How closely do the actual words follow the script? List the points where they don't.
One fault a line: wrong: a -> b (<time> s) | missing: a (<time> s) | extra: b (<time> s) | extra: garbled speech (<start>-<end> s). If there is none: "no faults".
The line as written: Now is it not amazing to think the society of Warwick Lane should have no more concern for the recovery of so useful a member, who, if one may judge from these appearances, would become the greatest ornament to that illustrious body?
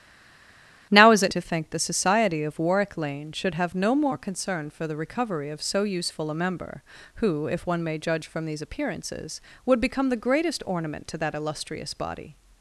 missing: not amazing (1.3 s)